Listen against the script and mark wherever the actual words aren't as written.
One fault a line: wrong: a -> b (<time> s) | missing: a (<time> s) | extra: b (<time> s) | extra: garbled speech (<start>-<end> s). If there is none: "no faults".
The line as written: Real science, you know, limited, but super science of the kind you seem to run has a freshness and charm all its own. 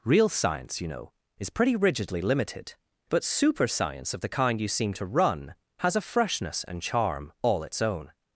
extra: is pretty rigidly (1.4 s)